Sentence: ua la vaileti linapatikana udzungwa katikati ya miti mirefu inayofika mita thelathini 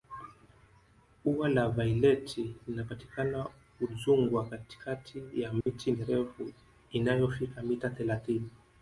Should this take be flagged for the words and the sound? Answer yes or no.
yes